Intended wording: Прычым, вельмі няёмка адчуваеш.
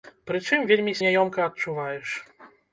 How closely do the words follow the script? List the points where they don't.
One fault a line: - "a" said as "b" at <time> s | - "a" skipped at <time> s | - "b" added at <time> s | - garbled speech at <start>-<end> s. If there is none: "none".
none